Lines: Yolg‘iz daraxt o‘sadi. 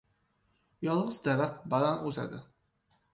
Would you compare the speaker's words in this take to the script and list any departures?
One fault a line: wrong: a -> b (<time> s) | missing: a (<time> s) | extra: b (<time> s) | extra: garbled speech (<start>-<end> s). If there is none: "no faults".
extra: baland (1.7 s)